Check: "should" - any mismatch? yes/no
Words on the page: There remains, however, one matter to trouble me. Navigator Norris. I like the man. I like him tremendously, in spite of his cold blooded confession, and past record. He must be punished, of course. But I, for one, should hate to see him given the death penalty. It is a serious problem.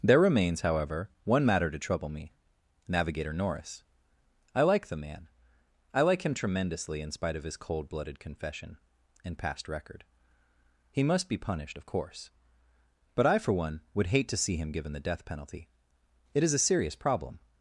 yes